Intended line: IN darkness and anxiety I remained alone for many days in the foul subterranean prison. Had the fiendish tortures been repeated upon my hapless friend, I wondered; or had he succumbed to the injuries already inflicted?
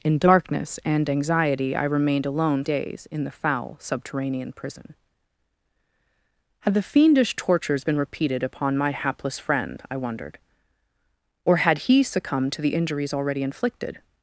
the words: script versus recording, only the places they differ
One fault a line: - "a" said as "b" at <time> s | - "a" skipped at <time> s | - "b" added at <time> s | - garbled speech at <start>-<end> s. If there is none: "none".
- "for many" skipped at 2.6 s